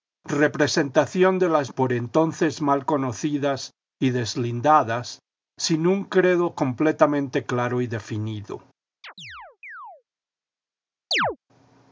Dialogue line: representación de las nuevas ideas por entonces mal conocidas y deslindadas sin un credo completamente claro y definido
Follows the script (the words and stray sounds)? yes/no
no